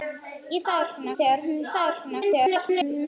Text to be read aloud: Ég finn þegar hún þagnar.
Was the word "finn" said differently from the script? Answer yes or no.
yes